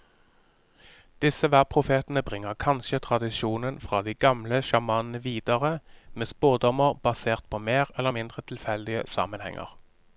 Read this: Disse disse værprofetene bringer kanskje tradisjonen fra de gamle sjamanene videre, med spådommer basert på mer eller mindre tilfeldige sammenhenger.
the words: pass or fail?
fail